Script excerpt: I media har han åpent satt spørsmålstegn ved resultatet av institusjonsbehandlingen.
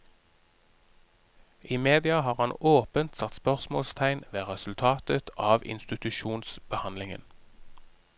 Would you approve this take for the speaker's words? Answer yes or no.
yes